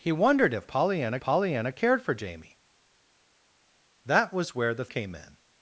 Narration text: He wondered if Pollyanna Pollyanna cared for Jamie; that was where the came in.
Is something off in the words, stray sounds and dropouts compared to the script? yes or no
no